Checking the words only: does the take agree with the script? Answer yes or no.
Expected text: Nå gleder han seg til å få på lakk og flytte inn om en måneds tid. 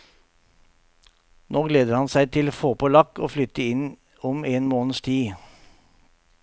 yes